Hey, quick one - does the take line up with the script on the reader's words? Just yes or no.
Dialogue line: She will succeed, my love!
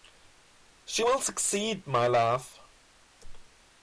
yes